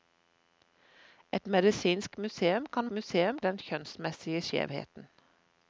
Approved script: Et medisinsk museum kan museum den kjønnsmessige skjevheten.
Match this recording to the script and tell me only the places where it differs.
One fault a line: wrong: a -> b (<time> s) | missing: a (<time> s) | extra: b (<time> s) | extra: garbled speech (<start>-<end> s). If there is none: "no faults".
no faults